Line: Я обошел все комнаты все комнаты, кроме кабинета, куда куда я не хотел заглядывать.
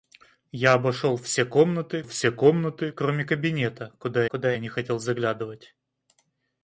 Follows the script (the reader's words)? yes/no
yes